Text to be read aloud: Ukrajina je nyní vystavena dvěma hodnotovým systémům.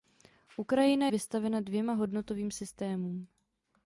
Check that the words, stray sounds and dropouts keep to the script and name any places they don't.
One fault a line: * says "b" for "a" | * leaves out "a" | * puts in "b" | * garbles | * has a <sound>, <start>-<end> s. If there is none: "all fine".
* leaves out "je nyní"